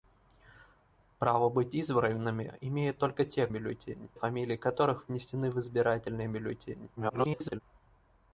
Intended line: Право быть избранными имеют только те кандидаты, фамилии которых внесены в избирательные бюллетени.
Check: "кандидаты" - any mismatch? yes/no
yes